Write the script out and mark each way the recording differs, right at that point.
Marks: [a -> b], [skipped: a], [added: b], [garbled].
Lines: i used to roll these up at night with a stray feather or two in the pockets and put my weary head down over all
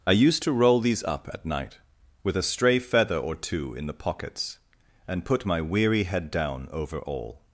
i used to roll these up at night with a stray feather or two in the pockets and put my weary head down over all